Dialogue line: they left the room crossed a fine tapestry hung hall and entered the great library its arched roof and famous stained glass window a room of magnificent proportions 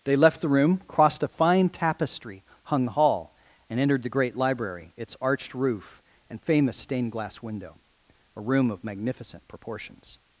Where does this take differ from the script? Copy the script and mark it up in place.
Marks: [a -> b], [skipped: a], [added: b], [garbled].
they left the room crossed a fine tapestry hung hall and entered the great library its arched roof and famous stained glass window a room of magnificent proportions